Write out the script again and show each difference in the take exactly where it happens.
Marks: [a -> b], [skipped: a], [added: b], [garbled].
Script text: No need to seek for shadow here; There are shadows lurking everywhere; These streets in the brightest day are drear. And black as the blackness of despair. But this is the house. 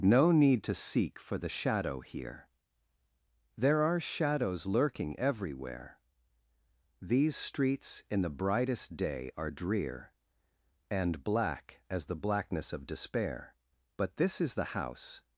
No need to seek for [added: the] shadow here; There are shadows lurking everywhere; These streets in the brightest day are drear. And black as the blackness of despair. But this is the house.